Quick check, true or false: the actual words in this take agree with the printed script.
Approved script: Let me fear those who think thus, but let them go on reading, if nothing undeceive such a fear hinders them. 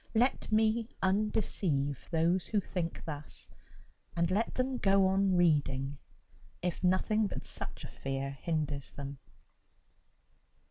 false